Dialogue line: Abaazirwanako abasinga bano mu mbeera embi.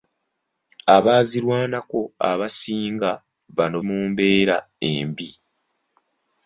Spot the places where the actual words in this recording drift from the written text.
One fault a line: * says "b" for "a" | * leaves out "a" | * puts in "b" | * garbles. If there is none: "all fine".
all fine